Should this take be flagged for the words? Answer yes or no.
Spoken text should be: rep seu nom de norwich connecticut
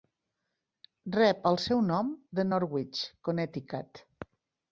yes